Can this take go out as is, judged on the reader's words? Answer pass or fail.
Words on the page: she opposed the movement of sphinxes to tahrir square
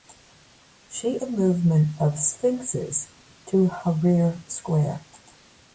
fail